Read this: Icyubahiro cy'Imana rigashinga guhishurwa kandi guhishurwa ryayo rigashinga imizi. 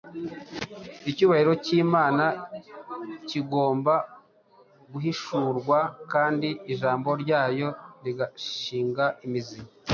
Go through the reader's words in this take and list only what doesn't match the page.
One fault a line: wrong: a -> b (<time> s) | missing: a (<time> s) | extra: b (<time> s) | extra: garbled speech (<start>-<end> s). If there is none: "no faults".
wrong: rigashinga -> kigomba (3.3 s)
wrong: guhishurwa -> ijambo (6.7 s)